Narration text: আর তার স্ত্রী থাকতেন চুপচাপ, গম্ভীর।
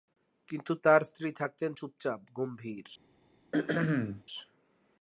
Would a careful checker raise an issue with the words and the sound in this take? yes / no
yes